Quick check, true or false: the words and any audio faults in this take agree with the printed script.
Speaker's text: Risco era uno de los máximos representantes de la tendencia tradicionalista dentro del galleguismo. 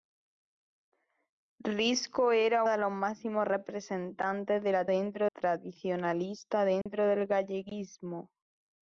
false